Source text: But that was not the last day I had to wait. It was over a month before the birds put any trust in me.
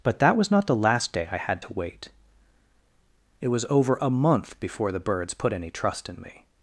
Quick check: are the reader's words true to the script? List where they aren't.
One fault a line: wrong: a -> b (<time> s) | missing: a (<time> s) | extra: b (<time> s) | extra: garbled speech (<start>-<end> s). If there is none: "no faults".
no faults